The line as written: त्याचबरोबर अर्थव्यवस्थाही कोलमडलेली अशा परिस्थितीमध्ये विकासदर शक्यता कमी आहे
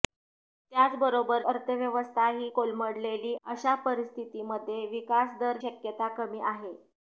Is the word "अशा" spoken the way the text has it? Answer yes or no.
yes